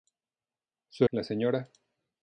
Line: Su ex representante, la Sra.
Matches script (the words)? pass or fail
fail